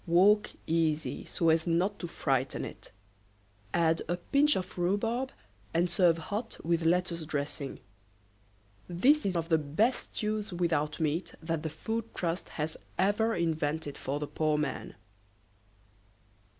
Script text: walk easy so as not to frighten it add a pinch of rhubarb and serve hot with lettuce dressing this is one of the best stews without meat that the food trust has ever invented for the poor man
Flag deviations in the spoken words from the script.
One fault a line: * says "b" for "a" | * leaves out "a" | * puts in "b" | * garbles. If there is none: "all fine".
* leaves out "one"